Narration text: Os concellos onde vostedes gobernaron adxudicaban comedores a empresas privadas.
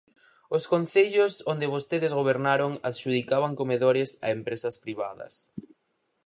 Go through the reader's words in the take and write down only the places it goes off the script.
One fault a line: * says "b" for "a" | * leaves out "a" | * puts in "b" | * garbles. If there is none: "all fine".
all fine